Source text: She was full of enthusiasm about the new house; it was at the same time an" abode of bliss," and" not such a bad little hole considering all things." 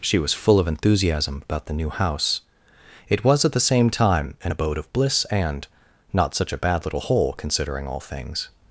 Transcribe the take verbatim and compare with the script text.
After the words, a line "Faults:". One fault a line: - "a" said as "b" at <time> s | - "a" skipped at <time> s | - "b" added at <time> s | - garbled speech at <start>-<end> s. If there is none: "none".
She was full of enthusiasm about the new house; it was at the same time an" abode of bliss," and" not such a bad little hole considering all things."
Faults:
none